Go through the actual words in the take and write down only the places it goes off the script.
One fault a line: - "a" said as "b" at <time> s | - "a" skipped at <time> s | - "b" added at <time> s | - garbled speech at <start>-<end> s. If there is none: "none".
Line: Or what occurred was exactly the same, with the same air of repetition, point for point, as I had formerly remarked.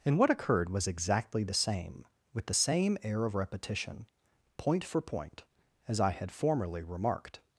- "Or" said as "And" at 0.0 s